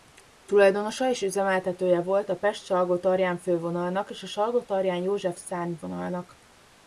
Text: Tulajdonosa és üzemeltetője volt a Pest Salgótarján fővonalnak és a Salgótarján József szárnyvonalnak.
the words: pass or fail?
pass